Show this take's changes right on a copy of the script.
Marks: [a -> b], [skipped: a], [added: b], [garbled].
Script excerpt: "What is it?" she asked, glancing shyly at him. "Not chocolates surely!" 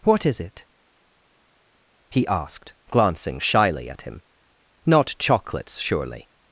"What is it?" [she -> he] asked, glancing shyly at him. "Not chocolates surely!"